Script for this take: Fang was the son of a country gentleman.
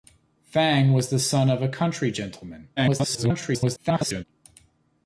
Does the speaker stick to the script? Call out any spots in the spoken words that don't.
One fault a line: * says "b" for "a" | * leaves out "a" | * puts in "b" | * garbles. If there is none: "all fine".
* garbles